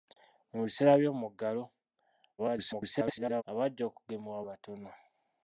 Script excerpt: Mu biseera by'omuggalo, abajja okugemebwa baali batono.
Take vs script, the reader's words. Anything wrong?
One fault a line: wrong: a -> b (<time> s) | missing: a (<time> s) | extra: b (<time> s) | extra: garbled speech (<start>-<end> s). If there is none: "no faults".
extra: garbled speech (2.4-3.4 s)
missing: baali (4.4 s)